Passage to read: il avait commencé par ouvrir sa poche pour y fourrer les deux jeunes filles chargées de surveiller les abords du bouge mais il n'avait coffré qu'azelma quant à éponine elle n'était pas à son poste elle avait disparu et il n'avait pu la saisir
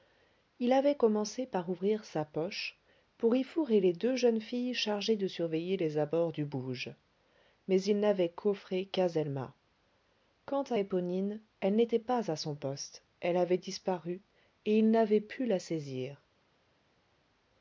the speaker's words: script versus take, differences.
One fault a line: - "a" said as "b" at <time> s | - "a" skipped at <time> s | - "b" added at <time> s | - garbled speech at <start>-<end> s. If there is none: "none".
none